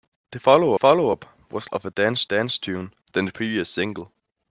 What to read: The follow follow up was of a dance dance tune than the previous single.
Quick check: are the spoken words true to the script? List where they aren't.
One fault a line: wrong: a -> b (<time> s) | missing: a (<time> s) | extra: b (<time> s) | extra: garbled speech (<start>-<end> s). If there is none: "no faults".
no faults